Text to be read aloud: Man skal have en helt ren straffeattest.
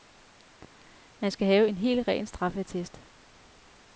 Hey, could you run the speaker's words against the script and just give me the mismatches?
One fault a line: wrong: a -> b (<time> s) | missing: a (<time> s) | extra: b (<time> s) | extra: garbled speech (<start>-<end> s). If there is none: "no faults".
no faults